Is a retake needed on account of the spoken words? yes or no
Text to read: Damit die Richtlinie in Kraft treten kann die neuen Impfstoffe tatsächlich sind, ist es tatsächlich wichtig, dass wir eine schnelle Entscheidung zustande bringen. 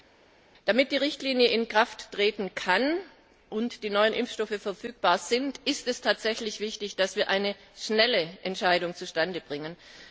yes